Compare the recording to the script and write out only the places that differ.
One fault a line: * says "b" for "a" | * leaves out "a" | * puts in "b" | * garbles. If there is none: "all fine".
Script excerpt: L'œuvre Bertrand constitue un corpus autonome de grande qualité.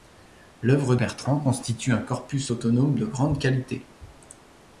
all fine